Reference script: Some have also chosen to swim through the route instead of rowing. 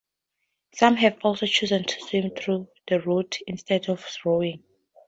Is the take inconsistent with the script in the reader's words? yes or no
no